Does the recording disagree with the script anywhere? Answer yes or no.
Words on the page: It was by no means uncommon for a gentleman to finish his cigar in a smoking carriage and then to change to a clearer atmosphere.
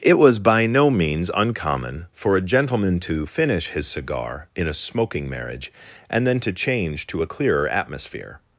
yes